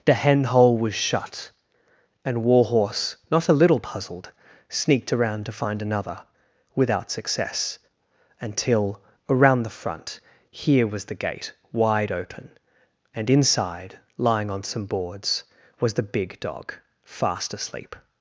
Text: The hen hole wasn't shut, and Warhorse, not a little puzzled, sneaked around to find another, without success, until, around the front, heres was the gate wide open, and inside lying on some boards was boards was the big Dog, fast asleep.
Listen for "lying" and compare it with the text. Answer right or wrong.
right